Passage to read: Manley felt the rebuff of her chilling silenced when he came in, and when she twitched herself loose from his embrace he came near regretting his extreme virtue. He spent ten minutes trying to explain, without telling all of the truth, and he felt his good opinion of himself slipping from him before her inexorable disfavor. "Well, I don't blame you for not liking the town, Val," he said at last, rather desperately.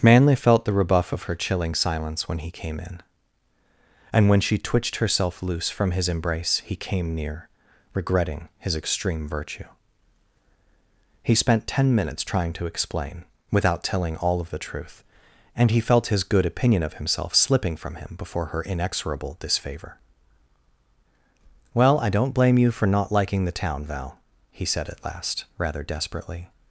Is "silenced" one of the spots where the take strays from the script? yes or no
yes